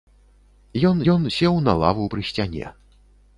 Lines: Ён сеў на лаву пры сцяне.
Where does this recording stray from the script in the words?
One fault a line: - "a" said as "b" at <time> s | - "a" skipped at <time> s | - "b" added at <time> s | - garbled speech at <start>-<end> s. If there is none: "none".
- "ён" added at 1.1 s